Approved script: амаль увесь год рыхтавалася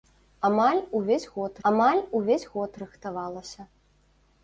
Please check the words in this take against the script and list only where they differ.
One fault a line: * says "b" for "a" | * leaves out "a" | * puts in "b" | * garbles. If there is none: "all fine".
* puts in "амаль увесь год"